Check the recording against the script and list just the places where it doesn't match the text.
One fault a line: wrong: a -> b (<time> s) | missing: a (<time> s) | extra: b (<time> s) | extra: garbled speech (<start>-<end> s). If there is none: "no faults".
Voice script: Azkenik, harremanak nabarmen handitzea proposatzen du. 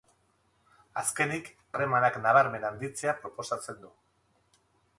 no faults